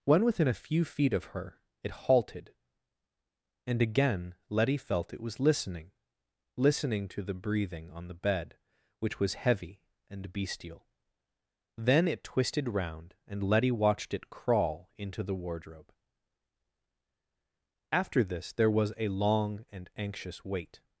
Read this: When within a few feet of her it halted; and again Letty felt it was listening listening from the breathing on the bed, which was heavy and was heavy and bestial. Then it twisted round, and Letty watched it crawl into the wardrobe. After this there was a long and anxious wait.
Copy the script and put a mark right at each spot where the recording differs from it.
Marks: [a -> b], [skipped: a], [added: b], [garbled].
When within a few feet of her it halted; and again Letty felt it was listening listening [from -> to] the breathing on the bed, which was heavy and [skipped: was heavy and] bestial. Then it twisted round, and Letty watched it crawl into the wardrobe. After this there was a long and anxious wait.